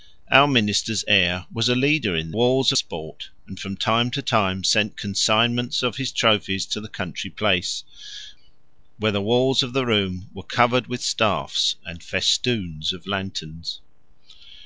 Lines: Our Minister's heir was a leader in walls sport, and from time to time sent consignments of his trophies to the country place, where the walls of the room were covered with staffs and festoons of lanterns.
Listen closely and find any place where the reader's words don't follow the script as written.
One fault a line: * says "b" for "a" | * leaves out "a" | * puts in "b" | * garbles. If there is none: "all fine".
all fine